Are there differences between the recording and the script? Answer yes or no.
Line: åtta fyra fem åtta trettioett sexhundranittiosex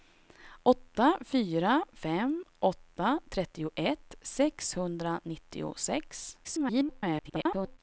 yes